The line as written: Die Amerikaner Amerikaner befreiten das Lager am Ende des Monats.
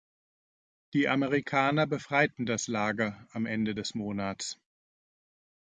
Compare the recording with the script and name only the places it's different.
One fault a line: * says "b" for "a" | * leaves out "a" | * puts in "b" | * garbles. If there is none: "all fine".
* leaves out "Amerikaner"